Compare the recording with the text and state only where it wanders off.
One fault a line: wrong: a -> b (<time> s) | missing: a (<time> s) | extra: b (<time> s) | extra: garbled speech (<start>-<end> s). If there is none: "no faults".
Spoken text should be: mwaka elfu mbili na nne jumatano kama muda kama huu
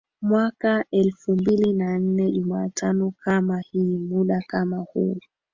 extra: hii (3.6 s)